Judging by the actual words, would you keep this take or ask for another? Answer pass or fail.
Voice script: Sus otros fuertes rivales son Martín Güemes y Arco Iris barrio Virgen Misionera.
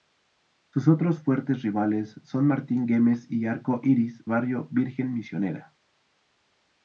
pass